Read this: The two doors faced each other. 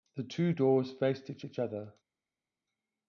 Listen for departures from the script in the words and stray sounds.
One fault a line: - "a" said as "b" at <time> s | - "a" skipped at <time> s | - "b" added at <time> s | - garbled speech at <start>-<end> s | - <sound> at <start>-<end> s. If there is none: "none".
- "each" added at 1.4 s